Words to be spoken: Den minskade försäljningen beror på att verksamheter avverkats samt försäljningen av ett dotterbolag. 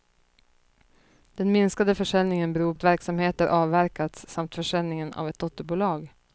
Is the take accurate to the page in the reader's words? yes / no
no